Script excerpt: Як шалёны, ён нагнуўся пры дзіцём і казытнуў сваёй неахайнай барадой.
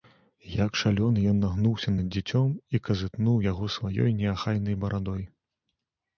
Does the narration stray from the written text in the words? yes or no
yes